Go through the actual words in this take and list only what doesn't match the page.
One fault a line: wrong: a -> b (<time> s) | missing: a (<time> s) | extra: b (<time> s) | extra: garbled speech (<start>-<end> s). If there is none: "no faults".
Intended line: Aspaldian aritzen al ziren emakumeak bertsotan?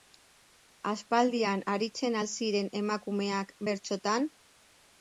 no faults